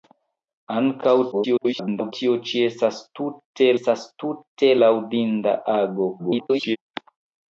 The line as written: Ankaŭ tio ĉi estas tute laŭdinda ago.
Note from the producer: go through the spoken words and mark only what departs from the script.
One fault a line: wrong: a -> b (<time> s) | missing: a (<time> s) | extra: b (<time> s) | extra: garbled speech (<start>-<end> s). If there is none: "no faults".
extra: garbled speech (1.3-2.1 s)
extra: estas tute (3.8 s)
extra: garbled speech (6.2-6.8 s)